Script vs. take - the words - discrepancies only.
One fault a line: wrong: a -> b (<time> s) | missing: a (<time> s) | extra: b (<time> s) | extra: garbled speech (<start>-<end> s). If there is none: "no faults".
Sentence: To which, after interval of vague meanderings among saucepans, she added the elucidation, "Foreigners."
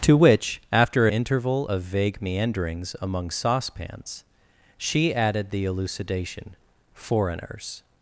no faults